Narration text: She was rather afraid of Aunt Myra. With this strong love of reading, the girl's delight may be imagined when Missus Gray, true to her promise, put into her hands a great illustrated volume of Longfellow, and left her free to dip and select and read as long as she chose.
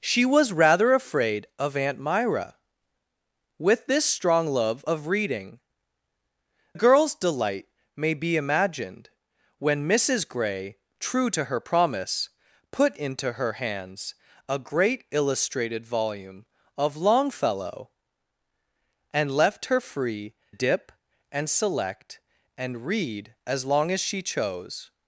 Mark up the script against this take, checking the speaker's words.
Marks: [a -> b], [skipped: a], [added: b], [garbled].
She was rather afraid of Aunt Myra. With this strong love of reading, [skipped: the] girl's delight may be imagined when Missus Gray, true to her promise, put into her hands a great illustrated volume of Longfellow, and left her free [skipped: to] dip and select and read as long as she chose.